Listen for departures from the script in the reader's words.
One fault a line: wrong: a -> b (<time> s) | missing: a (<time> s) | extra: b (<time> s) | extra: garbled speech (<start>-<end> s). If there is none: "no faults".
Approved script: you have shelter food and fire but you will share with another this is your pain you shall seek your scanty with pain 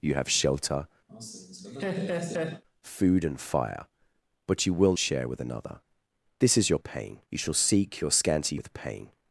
no faults